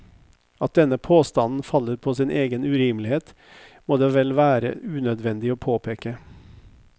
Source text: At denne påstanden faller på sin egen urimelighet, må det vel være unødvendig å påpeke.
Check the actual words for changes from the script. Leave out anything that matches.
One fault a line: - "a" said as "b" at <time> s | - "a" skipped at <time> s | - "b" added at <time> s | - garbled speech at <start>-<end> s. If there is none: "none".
none